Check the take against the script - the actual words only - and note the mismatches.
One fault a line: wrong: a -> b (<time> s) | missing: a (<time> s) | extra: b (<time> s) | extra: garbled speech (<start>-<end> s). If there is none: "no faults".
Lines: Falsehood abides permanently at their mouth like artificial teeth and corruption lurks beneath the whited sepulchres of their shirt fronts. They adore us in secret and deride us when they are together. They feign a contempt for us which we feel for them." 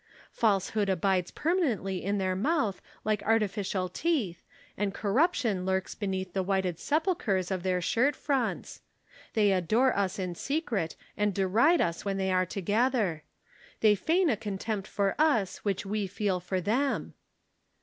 wrong: at -> in (2.0 s)